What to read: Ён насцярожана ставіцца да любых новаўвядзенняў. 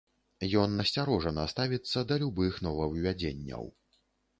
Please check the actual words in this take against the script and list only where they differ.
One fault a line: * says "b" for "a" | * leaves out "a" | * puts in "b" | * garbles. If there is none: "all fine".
all fine